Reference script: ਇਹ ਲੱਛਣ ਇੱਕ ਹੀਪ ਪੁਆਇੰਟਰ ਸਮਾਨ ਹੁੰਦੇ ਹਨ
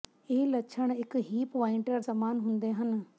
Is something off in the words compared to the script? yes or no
no